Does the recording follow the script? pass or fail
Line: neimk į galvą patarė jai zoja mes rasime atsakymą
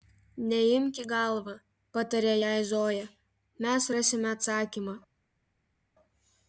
pass